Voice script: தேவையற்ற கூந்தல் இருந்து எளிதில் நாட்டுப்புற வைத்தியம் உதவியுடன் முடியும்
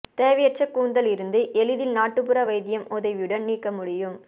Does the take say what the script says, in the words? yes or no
no